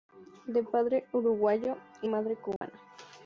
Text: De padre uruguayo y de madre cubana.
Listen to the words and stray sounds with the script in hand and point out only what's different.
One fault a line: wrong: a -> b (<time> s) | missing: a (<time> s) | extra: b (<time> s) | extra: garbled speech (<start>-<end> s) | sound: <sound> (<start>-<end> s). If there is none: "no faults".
missing: de (2.1 s)
sound: dropout (2.6-2.6 s)